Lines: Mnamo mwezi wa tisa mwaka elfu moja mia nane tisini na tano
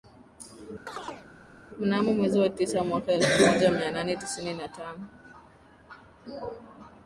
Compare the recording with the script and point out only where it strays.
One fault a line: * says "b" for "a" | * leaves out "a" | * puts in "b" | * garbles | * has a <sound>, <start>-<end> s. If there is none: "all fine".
* has a chirp, 0.9-1.3 s